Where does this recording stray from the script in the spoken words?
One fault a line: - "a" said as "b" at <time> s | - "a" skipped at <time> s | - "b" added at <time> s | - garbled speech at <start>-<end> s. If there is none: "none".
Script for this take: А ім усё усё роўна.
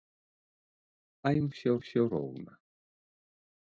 none